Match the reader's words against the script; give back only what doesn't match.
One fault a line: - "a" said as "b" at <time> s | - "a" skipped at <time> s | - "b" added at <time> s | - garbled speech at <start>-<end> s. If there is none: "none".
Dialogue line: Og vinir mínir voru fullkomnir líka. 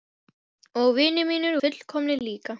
- "voru" skipped at 1.6 s